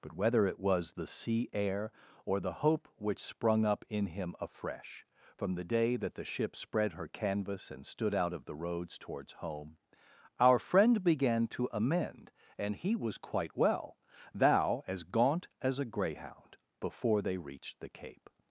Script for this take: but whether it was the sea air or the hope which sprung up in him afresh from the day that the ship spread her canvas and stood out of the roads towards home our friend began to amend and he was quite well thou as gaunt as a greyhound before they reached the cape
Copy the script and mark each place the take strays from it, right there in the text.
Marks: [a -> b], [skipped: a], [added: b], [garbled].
but whether it was the sea air or the hope which sprung up in him afresh from the day that the ship spread her canvas and stood out of the roads towards home our friend began to amend and he was quite well thou as gaunt as a greyhound before they reached the cape